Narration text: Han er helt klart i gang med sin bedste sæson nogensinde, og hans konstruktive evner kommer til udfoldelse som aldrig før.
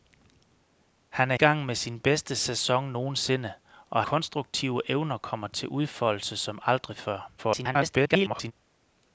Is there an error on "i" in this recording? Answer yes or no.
yes